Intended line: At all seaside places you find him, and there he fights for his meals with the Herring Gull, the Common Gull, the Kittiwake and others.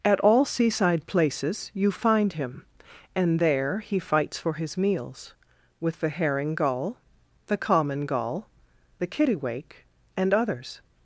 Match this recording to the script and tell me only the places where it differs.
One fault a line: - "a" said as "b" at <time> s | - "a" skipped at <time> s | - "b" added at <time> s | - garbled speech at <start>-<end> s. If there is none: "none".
none